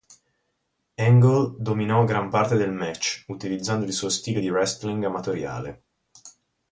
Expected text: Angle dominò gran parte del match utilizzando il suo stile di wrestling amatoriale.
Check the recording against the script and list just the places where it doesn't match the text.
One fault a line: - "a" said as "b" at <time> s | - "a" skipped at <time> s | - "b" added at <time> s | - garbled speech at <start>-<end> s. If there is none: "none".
none